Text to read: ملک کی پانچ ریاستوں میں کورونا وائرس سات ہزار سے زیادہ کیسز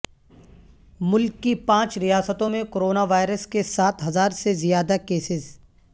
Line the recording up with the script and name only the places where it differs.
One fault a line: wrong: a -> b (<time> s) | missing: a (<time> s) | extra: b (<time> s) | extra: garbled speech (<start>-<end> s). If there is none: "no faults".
extra: کے (3.5 s)